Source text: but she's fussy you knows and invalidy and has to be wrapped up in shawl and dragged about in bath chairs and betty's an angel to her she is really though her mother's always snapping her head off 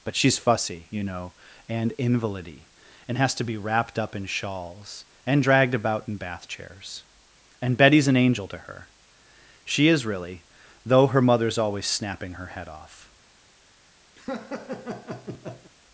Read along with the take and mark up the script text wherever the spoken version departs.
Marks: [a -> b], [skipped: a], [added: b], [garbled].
but she's fussy you [knows -> know] and invalidy and has to be wrapped up in [shawl -> shawls] and dragged about in bath chairs and betty's an angel to her she is really though her mother's always snapping her head off